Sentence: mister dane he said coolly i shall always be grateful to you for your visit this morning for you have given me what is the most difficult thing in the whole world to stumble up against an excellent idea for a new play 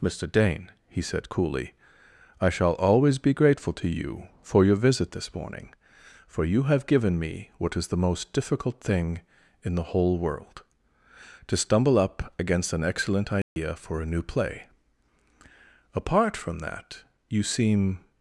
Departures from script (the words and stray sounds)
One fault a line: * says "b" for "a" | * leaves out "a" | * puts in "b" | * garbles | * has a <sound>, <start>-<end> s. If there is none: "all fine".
* has a dropout, 13.4-13.6 s
* puts in "apart from that you seem"